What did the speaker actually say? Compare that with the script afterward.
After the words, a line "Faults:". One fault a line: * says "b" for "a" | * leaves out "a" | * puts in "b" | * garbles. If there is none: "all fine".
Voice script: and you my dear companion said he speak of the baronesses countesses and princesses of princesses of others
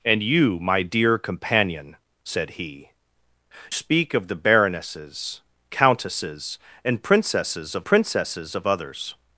and you my dear companion said he speak of the baronesses countesses and princesses of princesses of others
Faults:
all fine